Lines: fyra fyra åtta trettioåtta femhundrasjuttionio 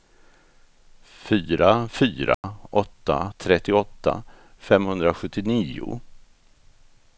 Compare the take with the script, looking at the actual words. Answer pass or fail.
pass